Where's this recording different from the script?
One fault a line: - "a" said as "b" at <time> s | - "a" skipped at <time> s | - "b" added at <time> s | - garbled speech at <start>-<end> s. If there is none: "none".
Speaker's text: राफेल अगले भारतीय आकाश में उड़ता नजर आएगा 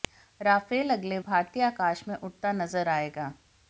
none